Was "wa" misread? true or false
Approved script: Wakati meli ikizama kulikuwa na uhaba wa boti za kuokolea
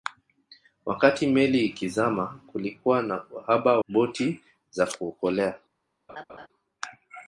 true